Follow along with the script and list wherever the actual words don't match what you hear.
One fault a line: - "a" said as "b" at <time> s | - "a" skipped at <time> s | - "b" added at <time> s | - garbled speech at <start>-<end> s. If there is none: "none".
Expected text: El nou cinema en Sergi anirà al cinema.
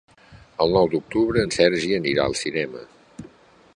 - "cinema" said as "d'octubre" at 0.9 s